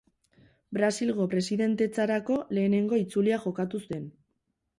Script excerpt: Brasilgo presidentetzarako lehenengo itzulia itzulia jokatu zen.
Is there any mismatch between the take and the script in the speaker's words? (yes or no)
yes